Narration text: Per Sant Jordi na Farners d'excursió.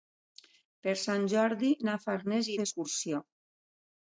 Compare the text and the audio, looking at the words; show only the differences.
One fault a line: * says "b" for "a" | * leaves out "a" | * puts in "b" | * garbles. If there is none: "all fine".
all fine